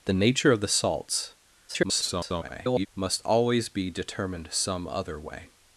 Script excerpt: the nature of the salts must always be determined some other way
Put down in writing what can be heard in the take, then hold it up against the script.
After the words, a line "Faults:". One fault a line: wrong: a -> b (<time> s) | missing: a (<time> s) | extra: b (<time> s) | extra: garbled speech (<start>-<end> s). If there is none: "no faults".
the nature of the salts [garbled] must always be determined some other way
Faults:
extra: garbled speech (1.7-2.9 s)